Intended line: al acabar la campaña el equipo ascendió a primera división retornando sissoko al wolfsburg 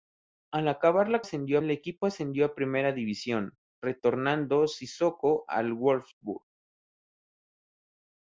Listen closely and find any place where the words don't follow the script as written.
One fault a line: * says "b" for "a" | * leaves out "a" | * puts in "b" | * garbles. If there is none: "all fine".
* says "ascendió" for "campaña"